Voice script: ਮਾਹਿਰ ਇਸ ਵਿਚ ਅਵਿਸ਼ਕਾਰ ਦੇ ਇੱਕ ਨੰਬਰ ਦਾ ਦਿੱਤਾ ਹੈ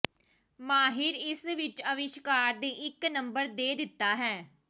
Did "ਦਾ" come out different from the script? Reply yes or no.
yes